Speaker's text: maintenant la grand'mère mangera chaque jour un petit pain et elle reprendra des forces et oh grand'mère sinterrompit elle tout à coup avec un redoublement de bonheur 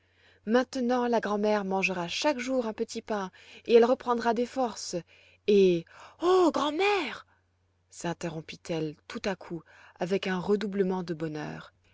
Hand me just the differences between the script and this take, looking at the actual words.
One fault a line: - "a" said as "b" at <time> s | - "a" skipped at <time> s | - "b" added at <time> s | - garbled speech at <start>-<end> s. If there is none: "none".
none